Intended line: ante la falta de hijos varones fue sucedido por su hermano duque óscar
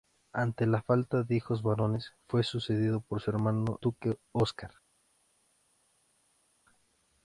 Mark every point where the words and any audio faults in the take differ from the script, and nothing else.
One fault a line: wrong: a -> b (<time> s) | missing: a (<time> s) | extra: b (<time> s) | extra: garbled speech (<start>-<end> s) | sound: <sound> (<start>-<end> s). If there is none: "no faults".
no faults